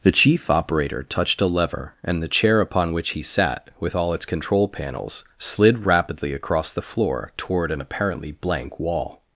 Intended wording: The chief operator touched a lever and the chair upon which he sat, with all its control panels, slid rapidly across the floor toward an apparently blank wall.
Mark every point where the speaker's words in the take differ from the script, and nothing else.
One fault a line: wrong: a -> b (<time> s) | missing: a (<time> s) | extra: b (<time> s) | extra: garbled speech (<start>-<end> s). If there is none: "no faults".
no faults